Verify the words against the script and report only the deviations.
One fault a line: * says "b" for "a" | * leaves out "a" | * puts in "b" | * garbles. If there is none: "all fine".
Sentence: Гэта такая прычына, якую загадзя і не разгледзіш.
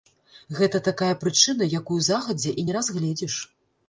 all fine